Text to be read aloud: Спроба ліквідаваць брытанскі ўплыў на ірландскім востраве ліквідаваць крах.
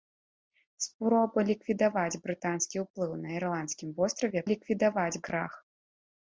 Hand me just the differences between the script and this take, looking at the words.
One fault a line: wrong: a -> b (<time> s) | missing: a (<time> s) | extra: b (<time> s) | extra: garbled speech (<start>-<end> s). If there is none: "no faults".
no faults